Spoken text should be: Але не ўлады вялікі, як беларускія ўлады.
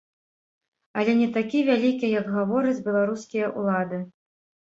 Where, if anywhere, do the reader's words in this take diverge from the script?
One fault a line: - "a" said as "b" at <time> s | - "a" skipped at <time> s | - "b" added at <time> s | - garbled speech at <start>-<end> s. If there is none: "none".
- "ўлады" said as "такі" at 1.4 s
- "гавораць" added at 2.4 s